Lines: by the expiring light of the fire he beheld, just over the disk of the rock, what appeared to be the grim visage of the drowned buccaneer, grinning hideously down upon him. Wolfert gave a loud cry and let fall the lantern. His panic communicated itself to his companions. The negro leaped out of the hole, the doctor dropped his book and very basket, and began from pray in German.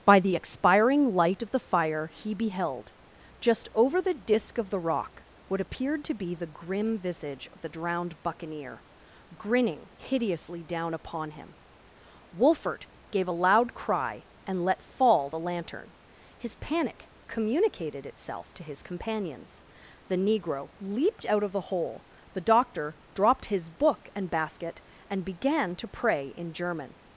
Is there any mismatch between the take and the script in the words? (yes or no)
yes